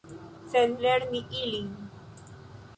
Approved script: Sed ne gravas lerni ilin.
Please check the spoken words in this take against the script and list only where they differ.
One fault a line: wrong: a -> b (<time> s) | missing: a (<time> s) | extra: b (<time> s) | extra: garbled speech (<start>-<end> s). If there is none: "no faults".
missing: ne gravas (0.7 s)